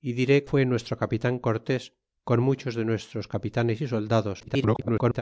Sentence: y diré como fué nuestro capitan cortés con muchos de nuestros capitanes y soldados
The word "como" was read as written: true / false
false